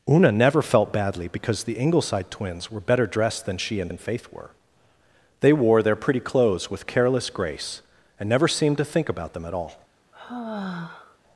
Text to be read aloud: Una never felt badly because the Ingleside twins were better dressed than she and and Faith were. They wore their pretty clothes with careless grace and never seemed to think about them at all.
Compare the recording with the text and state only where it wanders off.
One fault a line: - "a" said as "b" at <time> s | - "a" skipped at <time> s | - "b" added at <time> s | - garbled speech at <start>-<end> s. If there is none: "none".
none